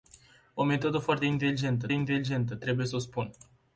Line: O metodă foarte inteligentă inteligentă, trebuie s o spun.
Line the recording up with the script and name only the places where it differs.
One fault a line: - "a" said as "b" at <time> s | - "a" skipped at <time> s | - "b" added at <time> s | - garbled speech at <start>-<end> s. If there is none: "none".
none